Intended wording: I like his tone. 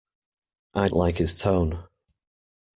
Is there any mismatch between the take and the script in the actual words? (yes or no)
no